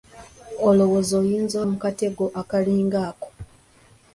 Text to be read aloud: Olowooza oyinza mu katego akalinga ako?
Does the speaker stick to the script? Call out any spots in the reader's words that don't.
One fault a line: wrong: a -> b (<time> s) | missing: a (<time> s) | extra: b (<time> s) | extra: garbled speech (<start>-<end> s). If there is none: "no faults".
no faults